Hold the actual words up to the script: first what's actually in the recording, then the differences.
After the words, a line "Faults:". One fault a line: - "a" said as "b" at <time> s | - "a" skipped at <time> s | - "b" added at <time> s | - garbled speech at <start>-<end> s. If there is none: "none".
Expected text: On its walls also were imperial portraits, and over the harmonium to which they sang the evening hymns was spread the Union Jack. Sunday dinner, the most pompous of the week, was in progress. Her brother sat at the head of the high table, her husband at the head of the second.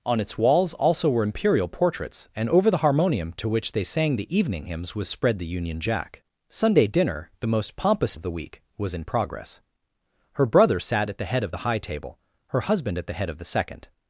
On its walls also were imperial portraits, and over the harmonium to which they sang the evening hymns was spread the Union Jack. Sunday dinner, the most pompous of the week, was in progress. Her brother sat at the head of the high table, her husband at the head of the second.
Faults:
none